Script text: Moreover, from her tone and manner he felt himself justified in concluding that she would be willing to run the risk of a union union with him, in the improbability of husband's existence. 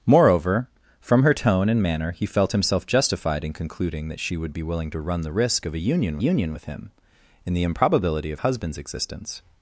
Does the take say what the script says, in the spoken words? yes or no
yes